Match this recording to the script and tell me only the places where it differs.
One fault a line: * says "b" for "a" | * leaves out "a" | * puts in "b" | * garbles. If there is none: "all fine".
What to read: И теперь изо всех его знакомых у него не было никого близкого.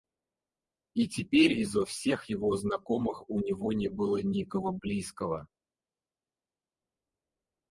all fine